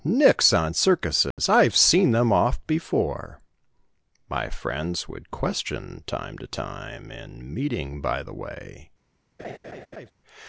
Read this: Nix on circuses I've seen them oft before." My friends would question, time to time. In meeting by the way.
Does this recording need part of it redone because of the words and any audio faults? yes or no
yes